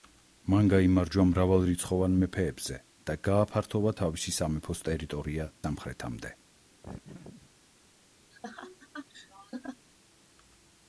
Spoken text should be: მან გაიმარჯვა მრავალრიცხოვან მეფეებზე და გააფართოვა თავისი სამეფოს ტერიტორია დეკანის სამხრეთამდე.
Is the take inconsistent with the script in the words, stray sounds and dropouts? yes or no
yes